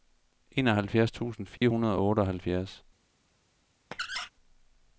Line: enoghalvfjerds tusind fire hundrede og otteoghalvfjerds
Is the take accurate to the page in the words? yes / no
yes